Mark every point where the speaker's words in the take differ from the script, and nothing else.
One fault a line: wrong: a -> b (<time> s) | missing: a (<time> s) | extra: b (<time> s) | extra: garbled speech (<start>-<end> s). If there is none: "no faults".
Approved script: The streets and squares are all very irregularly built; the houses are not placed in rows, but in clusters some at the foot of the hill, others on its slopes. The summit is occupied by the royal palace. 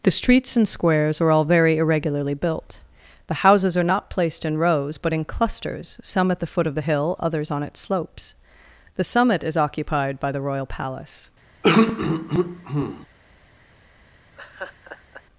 no faults